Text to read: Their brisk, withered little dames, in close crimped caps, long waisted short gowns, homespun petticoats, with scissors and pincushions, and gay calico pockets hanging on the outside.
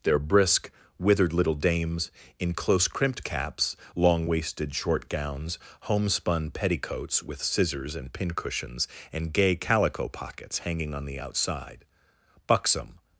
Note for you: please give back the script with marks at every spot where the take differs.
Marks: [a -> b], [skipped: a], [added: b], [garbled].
Their brisk, withered little dames, in close crimped caps, long waisted short gowns, homespun petticoats, with scissors and pincushions, and gay calico pockets hanging on the outside. [added: Buxom]